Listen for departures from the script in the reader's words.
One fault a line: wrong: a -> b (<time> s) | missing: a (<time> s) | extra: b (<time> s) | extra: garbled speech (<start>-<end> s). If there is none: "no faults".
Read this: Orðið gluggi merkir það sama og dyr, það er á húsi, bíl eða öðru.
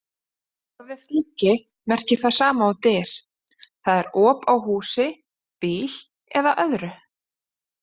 extra: op (4.2 s)